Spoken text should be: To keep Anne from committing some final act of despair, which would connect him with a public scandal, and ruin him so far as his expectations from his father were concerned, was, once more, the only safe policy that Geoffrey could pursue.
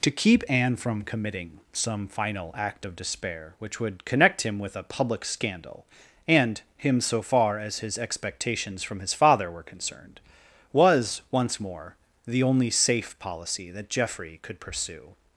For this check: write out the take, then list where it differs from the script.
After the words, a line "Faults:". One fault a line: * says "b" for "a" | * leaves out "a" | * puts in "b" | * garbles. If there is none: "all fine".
To keep Anne from committing some final act of despair, which would connect him with a public scandal, and him so far as his expectations from his father were concerned, was, once more, the only safe policy that Geoffrey could pursue.
Faults:
* leaves out "ruin"